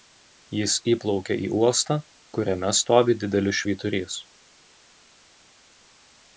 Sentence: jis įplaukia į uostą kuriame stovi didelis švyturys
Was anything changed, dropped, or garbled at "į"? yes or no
no